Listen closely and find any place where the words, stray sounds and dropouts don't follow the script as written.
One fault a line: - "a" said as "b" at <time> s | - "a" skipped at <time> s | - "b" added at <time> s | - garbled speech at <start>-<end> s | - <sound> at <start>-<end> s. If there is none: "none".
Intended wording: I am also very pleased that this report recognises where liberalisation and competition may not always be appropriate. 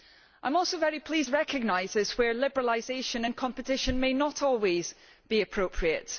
- "that this report" skipped at 1.3 s